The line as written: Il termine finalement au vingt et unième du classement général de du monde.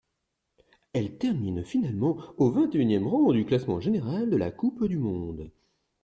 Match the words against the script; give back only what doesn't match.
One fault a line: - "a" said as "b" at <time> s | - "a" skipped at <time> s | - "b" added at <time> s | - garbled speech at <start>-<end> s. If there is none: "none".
- "Il" said as "Elle" at 0.9 s
- "rang" added at 3.1 s
- "la Coupe" added at 4.4 s